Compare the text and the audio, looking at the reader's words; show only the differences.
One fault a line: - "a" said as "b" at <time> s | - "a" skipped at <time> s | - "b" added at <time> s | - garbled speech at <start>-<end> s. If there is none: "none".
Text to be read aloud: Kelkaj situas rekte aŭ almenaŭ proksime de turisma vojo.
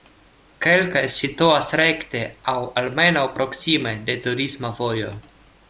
none